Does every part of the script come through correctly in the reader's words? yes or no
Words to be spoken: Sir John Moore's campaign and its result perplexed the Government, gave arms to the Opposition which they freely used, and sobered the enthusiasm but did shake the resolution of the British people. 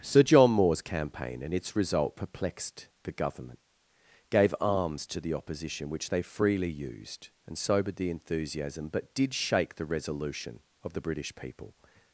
yes